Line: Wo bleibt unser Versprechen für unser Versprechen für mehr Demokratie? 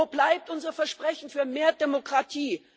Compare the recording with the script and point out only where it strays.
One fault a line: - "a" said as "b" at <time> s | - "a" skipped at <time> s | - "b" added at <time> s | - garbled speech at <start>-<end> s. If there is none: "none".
- "unser Versprechen für" skipped at 1.4 s